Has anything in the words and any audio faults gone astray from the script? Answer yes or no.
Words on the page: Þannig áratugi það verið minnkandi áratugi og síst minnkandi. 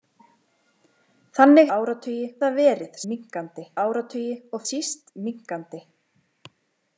no